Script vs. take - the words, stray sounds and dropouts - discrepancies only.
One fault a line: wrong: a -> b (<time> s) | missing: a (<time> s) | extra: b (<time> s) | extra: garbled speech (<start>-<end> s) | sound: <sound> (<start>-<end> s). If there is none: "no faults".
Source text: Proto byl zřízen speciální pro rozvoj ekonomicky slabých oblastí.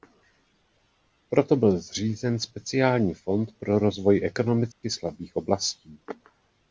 extra: fond (3.1 s)
sound: dropout (4.7-4.8 s)